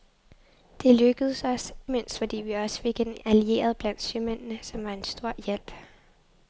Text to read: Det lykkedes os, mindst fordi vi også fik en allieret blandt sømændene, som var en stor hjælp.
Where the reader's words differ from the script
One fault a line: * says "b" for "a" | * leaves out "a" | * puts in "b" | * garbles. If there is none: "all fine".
all fine